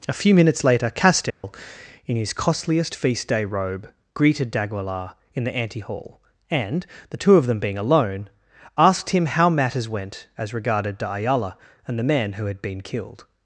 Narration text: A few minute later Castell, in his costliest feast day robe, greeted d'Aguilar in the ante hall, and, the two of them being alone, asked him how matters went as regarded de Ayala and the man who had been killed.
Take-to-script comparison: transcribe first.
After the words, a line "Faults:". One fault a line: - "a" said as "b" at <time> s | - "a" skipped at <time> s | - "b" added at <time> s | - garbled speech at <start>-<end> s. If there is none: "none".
A few minutes later Castell, in his costliest feast day robe, greeted d'Aguilar in the ante hall, and, the two of them being alone, asked him how matters went as regarded de Ayala and the man who had been killed.
Faults:
- "minute" said as "minutes" at 0.3 s